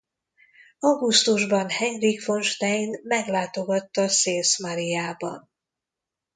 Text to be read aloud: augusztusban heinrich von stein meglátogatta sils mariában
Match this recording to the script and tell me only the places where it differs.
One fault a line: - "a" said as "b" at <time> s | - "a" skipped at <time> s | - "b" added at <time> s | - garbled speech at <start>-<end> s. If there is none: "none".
none